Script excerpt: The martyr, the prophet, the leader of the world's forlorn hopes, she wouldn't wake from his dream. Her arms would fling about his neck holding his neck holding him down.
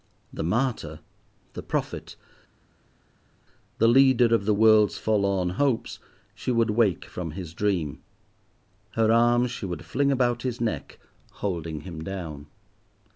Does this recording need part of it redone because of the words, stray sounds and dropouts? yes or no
yes